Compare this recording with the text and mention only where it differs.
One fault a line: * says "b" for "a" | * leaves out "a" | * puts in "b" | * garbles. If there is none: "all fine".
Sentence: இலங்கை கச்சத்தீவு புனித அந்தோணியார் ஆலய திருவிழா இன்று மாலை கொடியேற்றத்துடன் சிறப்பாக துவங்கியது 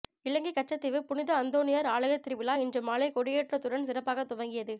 all fine